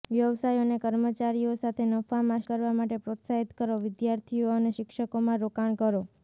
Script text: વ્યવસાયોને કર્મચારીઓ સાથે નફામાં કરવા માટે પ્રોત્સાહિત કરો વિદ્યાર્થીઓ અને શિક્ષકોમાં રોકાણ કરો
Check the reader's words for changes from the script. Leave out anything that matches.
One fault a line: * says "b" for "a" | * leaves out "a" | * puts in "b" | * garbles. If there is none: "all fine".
all fine